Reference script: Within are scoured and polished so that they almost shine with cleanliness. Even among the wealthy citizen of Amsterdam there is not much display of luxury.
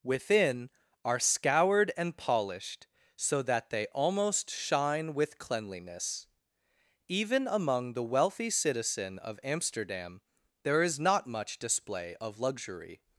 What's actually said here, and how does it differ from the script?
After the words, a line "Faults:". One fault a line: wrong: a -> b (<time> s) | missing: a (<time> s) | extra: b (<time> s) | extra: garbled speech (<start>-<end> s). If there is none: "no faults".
Within are scoured and polished so that they almost shine with cleanliness. Even among the wealthy citizen of Amsterdam there is not much display of luxury.
Faults:
no faults